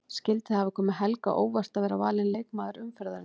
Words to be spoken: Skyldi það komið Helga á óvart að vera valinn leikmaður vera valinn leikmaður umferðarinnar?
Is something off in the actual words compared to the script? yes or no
yes